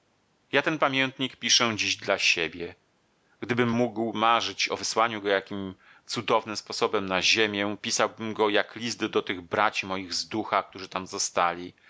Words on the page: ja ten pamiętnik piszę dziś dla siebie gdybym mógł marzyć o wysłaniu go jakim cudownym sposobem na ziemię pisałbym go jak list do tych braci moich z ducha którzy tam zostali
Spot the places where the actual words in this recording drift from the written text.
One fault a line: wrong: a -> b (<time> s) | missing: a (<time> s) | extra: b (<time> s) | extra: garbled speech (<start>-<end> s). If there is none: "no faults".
no faults